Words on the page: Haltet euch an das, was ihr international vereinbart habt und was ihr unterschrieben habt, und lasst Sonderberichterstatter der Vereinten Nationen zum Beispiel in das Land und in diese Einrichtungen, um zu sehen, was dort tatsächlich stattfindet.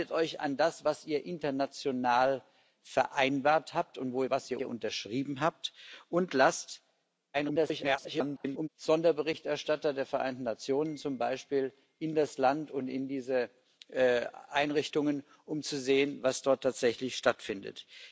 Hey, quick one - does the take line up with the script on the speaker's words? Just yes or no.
no